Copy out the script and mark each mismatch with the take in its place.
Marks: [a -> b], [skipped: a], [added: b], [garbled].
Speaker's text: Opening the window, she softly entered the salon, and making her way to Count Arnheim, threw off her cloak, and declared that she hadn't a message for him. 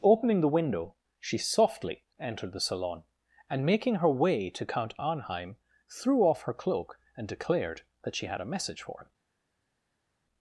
Opening the window, she softly entered the salon, and making her way to Count Arnheim, threw off her cloak, and declared that she [hadn't -> had] a message for him.